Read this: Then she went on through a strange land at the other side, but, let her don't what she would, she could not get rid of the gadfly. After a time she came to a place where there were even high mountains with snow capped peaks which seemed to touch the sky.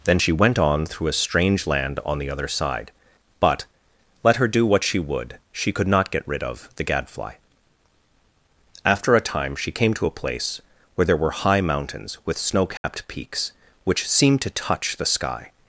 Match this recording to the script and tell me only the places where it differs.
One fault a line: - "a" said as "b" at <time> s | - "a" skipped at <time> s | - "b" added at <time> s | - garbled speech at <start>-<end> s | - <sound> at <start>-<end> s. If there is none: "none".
- "at" said as "on" at 2.1 s
- "don't" said as "do" at 4.5 s
- "even" skipped at 11.3 s
- dropout at 12.8-12.8 s